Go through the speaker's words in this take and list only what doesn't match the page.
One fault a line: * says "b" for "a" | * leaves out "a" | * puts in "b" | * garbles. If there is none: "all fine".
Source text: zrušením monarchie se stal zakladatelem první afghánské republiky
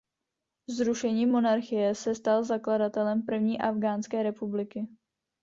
all fine